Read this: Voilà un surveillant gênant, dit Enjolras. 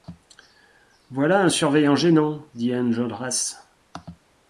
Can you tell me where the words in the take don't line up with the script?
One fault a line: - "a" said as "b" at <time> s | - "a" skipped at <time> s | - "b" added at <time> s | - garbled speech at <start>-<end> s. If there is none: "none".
none